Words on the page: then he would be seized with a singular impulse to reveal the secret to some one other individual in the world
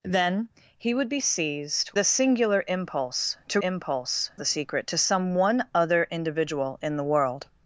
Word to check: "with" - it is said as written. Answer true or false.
false